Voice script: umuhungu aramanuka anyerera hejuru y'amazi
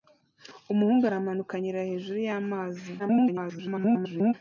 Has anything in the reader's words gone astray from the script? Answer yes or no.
yes